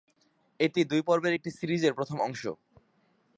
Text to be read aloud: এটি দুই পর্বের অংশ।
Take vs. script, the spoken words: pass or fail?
fail